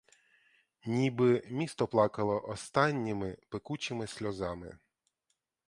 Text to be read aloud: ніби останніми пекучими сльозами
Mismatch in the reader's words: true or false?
true